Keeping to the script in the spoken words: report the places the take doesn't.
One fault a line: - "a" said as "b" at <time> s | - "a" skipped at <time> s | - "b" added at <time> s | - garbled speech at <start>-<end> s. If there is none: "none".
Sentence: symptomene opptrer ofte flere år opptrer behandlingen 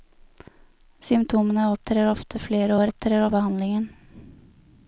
none